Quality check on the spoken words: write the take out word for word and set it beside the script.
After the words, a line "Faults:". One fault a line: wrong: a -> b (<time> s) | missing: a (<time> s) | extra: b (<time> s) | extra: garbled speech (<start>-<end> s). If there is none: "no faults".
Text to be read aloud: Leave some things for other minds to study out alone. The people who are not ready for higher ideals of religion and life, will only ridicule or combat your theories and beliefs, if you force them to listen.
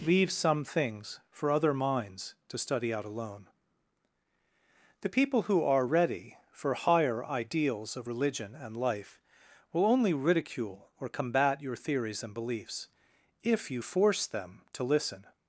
Leave some things for other minds to study out alone. The people who are ready for higher ideals of religion and life, will only ridicule or combat your theories and beliefs, if you force them to listen.
Faults:
missing: not (5.8 s)